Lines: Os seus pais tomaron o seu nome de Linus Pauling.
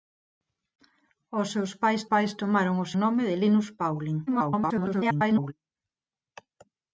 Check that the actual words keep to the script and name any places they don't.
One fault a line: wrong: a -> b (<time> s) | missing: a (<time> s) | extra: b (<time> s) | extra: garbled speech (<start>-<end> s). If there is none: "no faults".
extra: pais (2.1 s)
missing: seu (2.9 s)
extra: garbled speech (4.3-5.5 s)